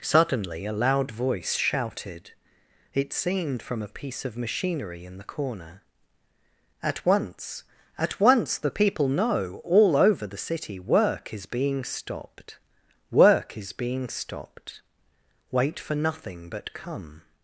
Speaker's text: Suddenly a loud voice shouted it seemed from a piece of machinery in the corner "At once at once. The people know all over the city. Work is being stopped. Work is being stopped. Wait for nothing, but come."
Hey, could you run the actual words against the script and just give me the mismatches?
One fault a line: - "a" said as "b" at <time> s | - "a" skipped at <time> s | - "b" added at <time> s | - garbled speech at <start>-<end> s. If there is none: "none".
none